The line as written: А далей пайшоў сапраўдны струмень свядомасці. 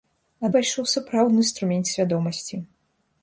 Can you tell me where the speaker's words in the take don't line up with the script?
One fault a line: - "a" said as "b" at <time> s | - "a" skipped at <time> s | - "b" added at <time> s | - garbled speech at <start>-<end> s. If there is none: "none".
- "далей" skipped at 0.5 s